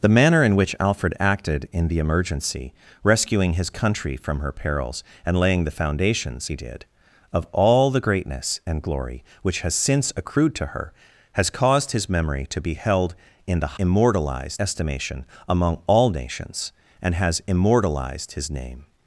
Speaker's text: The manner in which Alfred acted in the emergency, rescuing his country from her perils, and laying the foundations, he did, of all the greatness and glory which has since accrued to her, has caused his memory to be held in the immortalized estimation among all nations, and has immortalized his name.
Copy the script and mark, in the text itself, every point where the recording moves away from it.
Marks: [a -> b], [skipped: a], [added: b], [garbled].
The manner in which Alfred acted in the emergency, rescuing his country from her perils, and laying the foundations, he did, of all the greatness and glory which has since accrued to her, has caused his memory to be held in the immortalized estimation among all nations, and has immortalized his name.